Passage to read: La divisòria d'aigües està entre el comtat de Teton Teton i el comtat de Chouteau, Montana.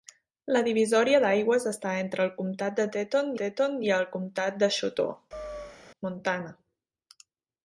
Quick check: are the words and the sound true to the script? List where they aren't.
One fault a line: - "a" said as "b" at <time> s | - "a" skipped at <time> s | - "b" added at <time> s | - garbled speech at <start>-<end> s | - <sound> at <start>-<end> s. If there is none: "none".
- chirp at 5.3-5.8 s